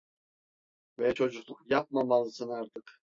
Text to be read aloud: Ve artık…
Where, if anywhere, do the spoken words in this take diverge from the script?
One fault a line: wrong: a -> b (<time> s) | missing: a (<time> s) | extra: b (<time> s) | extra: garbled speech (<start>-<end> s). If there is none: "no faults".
extra: çocukluk yapmamalısın (1.1 s)